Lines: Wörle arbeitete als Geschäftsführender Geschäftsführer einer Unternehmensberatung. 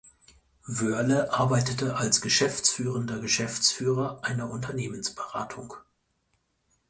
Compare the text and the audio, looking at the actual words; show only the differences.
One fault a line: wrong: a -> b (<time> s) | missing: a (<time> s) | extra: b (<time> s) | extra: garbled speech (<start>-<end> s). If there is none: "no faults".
no faults